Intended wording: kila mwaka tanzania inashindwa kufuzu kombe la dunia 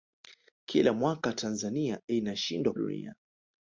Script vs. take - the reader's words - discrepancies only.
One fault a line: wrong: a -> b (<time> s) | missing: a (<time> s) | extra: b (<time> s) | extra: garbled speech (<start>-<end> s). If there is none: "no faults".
missing: kufuzu kombe la (2.7 s)